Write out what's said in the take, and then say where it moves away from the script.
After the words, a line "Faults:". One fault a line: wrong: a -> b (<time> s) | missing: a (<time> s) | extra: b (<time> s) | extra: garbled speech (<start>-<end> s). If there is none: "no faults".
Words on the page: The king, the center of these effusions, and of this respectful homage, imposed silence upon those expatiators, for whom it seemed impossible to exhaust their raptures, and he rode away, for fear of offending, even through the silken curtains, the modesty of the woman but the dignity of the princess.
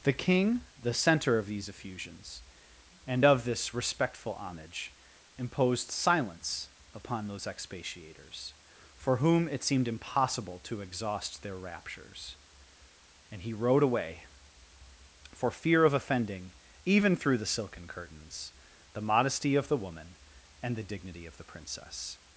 The king, the center of these effusions, and of this respectful homage, imposed silence upon those expatiators, for whom it seemed impossible to exhaust their raptures, and he rode away, for fear of offending, even through the silken curtains, the modesty of the woman and the dignity of the princess.
Faults:
wrong: but -> and (20.6 s)